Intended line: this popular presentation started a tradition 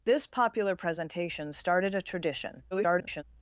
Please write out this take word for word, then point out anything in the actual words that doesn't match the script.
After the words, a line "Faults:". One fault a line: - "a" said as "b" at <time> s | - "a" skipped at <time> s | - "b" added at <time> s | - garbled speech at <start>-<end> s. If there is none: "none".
this popular presentation started a tradition [garbled]
Faults:
- garbled speech at 2.7-3.2 s